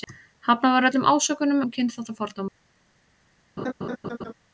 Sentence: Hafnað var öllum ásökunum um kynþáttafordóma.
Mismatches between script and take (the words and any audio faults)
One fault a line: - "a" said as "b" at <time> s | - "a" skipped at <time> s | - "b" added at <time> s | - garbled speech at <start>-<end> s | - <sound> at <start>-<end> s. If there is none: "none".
- laugh at 3.6-4.3 s